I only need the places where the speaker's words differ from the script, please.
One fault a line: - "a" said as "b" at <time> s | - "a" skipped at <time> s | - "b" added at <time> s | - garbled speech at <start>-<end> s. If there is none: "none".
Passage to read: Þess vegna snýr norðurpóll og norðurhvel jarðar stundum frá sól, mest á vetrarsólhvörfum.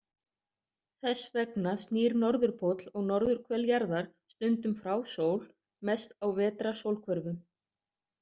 none